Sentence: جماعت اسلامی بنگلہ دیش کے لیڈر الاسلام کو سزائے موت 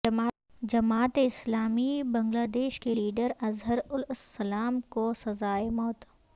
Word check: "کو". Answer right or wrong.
right